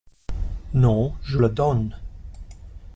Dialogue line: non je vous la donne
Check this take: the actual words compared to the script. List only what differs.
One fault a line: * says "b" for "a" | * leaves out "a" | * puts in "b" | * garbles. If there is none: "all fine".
* leaves out "vous"